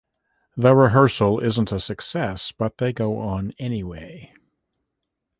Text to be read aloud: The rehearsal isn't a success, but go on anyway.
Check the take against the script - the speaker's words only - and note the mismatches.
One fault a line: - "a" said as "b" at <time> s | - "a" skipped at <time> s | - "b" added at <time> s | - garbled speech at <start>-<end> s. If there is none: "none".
- "they" added at 2.8 s